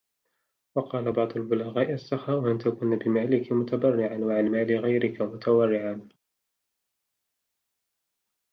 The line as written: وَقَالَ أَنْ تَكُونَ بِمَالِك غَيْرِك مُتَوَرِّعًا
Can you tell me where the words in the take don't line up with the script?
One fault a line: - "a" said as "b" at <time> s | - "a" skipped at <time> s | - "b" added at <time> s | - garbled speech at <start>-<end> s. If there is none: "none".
- "بَعْضُ الْبُلَغَاءِ السَّخَاءُ" added at 1.1 s
- "مُتَبَرِّعًا وَعَنْ مَالِ" added at 3.5 s